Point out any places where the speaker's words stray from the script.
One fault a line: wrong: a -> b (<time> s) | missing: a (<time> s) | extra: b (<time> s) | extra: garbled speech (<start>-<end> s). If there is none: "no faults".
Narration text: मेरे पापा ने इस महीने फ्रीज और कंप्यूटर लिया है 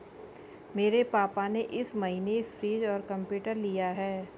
no faults